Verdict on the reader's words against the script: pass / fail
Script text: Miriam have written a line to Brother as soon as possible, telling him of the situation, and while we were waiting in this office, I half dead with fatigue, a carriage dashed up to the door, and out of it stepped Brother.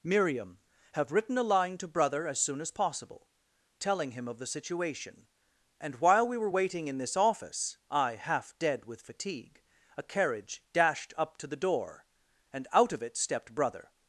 pass